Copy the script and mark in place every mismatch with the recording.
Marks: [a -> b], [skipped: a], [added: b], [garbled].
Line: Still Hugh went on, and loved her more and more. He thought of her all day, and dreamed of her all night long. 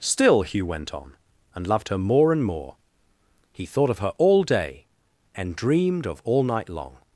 Still Hugh went on, and loved her more and more. He thought of her all day, and dreamed of [skipped: her] all night long.